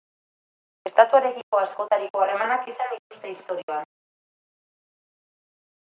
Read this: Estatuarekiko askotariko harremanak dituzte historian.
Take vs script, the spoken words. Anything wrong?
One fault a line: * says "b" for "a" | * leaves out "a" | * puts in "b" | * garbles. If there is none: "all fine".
* puts in "izan"